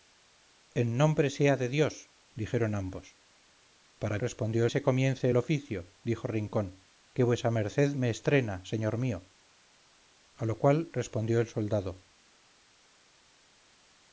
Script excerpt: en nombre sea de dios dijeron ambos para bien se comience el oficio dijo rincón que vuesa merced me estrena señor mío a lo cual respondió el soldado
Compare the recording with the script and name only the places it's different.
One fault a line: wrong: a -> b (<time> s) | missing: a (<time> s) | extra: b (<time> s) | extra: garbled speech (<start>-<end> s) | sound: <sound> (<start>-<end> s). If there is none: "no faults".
wrong: bien -> respondió (4.2 s)